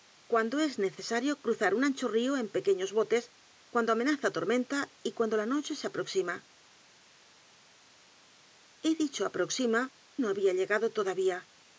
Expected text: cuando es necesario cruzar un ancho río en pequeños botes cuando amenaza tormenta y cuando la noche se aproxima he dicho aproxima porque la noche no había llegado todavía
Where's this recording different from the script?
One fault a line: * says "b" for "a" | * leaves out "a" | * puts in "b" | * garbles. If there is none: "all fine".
* leaves out "porque la noche"